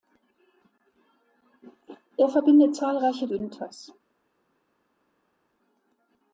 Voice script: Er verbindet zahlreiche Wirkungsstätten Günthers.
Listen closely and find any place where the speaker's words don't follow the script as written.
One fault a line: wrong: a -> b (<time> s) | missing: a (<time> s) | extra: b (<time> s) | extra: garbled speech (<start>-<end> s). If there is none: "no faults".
missing: Wirkungsstätten (3.3 s)